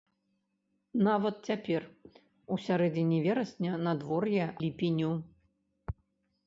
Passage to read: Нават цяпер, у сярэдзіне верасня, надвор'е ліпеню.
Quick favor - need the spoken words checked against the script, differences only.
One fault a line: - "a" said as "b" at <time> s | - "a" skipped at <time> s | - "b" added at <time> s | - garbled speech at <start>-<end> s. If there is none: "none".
none